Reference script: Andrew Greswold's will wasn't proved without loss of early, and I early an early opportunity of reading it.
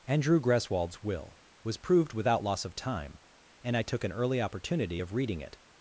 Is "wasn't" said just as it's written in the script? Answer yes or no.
no